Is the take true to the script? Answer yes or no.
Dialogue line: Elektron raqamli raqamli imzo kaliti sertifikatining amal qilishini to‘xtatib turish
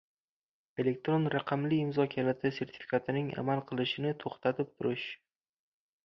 no